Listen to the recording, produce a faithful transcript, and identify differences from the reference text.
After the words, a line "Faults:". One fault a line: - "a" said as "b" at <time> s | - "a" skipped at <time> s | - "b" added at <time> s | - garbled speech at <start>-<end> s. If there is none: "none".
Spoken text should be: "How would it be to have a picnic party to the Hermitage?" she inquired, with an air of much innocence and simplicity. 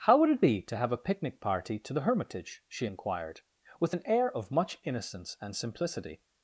"How would it be to have a picnic party to the Hermitage?" she inquired, with an air of much innocence and simplicity.
Faults:
none